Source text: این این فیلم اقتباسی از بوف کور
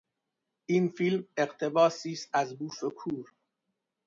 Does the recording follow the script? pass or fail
fail